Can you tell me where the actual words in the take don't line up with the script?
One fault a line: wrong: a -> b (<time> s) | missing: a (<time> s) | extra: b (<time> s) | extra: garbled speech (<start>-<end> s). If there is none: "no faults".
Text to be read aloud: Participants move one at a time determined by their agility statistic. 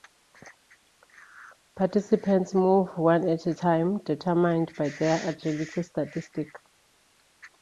no faults